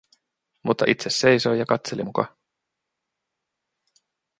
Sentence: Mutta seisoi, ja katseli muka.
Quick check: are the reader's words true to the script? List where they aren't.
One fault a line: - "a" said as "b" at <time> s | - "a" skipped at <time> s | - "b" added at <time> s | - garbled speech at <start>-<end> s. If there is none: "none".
- "itse" added at 0.9 s